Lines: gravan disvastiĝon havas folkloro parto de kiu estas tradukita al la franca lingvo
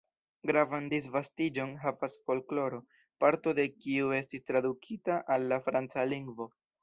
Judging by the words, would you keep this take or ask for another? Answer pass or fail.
fail